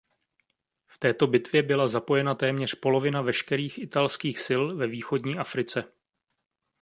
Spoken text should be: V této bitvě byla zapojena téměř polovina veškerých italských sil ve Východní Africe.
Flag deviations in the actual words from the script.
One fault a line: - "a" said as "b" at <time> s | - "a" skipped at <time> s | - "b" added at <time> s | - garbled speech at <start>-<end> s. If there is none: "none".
none